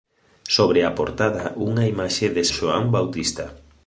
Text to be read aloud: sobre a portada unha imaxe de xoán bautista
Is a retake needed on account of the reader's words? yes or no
no